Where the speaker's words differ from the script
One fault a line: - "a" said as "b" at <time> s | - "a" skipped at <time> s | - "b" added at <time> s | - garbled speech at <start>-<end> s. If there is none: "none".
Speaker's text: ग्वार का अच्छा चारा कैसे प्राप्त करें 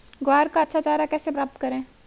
none